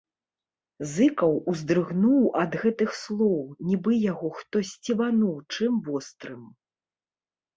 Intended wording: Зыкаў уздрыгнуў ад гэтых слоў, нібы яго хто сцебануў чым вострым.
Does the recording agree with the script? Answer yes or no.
yes